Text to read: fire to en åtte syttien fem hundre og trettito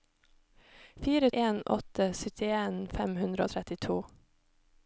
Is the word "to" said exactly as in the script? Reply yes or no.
no